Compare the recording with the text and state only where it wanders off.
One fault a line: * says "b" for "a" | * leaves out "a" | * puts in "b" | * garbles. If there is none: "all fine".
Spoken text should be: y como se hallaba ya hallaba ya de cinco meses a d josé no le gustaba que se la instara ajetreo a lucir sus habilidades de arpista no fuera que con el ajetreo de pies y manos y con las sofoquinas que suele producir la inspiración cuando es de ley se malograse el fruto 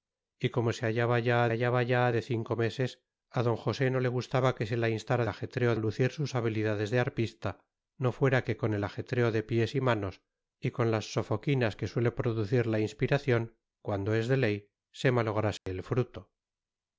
all fine